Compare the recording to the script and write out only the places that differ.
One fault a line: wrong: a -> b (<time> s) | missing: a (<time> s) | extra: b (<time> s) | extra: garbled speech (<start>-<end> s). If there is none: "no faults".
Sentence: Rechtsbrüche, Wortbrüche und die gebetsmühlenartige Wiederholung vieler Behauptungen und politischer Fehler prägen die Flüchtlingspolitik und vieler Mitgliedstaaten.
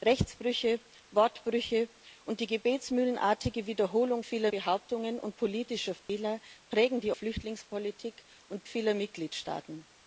no faults